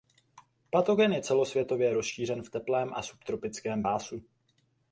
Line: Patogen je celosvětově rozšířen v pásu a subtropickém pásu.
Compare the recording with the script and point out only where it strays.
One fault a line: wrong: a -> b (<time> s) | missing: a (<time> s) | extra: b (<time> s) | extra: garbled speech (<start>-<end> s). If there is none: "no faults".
wrong: pásu -> teplém (2.5 s)